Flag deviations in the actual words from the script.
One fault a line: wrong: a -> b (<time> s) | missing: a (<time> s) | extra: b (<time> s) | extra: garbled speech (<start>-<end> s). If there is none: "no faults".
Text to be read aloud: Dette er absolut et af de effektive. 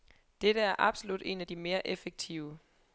wrong: et -> en (1.2 s)
extra: mere (1.5 s)